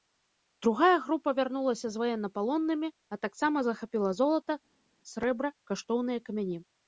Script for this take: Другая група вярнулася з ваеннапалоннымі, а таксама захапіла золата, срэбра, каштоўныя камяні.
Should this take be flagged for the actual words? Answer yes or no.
no